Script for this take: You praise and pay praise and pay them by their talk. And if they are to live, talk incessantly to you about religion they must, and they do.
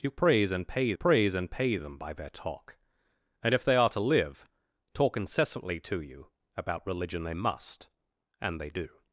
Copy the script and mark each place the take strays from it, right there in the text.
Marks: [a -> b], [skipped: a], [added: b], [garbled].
You praise and pay praise and pay them by their talk. And if they are to live, talk incessantly to you about religion they must, and they do.